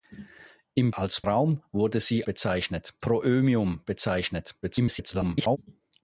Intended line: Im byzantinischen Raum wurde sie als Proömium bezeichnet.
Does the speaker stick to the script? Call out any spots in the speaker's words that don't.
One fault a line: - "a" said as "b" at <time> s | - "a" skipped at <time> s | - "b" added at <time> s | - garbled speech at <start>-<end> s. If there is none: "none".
- "byzantinischen" said as "als" at 0.9 s
- "als" said as "bezeichnet" at 2.2 s
- garbled speech at 4.6-5.6 s